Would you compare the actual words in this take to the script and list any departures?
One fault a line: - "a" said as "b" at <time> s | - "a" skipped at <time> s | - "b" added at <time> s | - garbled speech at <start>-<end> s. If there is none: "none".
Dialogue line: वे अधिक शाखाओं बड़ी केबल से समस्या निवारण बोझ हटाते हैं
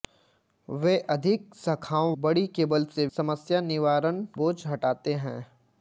none